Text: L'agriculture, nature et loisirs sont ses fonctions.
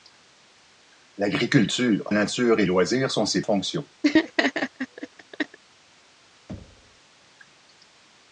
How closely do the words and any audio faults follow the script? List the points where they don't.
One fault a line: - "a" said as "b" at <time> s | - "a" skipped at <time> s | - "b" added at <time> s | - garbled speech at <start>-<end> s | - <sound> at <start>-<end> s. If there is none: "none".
- laugh at 4.0-5.6 s
- thud at 6.5-7.0 s